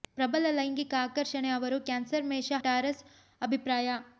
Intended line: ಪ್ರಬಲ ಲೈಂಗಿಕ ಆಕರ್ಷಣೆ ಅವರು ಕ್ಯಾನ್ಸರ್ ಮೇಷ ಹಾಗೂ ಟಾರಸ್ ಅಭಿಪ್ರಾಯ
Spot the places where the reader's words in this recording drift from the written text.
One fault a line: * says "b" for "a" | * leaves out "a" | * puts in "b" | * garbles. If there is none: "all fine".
* leaves out "ಹಾಗೂ"